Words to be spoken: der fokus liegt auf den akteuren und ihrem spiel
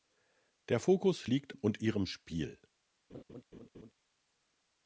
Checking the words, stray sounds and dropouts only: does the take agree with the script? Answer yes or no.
no